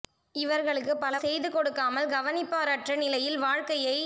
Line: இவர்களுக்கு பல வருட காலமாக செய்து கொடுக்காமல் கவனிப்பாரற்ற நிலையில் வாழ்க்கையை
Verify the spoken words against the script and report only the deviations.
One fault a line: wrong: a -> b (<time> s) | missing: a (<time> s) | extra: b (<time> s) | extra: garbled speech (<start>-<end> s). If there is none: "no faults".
missing: வருட காலமாக (1.1 s)